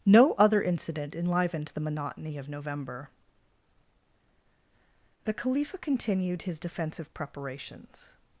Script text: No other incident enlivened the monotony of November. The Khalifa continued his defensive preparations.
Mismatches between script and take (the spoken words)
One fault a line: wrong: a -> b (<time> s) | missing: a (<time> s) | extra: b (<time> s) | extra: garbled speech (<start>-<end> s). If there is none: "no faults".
no faults